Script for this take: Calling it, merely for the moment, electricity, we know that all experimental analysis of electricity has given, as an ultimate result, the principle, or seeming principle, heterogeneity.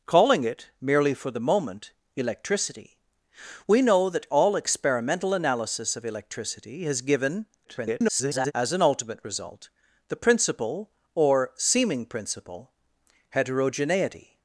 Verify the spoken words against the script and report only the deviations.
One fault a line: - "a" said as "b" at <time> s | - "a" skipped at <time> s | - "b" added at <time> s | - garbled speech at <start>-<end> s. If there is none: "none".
- garbled speech at 7.6-8.5 s